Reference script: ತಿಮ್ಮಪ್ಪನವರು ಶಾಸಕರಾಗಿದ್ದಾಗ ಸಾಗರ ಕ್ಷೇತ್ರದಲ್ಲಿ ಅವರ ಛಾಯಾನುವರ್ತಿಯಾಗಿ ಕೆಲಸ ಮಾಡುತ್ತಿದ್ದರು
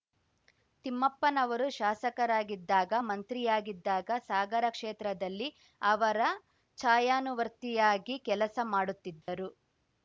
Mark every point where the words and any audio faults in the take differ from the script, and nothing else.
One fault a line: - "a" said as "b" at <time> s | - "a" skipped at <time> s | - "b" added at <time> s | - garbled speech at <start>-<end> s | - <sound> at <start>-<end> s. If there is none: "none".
- "ಮಂತ್ರಿಯಾಗಿದ್ದಾಗ" added at 3.1 s
- dropout at 9.2-9.3 s